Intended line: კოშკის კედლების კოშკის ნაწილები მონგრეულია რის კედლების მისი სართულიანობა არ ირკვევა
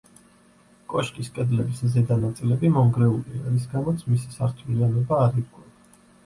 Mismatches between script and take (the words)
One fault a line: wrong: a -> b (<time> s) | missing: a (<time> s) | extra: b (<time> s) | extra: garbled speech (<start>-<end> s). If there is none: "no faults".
wrong: კოშკის -> ზედა (1.9 s)
wrong: კედლების -> გამოც (3.7 s)